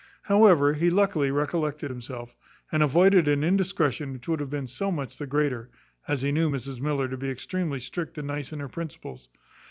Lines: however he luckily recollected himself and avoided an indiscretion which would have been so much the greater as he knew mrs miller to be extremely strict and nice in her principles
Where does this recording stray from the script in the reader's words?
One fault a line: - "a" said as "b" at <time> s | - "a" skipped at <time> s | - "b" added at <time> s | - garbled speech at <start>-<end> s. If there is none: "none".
none